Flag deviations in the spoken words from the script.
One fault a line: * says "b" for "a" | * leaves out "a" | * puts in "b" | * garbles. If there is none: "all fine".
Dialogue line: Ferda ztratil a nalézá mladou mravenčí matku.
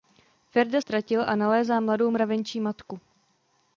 all fine